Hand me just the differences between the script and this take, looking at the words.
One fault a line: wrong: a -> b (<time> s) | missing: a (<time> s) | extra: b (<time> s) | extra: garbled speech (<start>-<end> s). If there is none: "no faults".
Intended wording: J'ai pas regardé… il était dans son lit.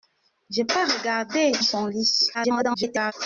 missing: il était dans (1.5 s)
extra: garbled speech (2.3-3.1 s)